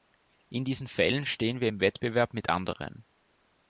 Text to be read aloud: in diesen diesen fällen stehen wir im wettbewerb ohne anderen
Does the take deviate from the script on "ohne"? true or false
true